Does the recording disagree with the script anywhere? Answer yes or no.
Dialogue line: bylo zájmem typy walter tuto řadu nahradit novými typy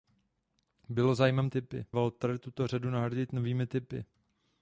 no